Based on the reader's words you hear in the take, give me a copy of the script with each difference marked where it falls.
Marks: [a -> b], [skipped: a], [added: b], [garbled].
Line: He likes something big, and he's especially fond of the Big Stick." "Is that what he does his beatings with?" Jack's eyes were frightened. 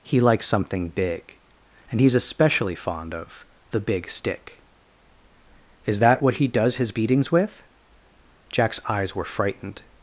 He likes something big, and he's especially fond of the Big Stick." "Is that what he does his beatings with?" Jack's eyes were frightened.